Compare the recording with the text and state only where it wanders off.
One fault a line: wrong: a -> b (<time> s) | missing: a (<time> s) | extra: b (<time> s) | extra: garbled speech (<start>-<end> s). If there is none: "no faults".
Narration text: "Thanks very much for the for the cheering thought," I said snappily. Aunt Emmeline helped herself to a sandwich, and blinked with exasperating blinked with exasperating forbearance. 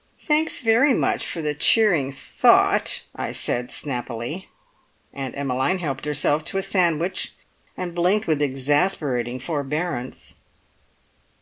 missing: for the (1.5 s)
missing: blinked with exasperating (9.4 s)